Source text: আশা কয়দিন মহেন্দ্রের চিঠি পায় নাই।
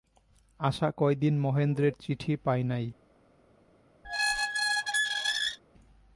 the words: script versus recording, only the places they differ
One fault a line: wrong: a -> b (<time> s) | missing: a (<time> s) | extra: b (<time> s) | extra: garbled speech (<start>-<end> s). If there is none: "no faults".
no faults